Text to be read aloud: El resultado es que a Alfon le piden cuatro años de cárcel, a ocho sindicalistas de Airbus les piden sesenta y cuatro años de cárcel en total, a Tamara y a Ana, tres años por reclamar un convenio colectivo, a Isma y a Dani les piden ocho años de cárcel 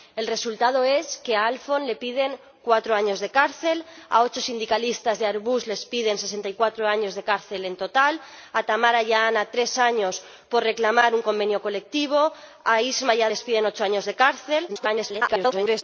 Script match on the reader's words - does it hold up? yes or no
no